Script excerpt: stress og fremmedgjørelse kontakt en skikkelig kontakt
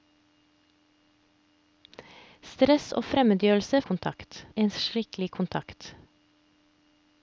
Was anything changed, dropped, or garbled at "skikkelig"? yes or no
no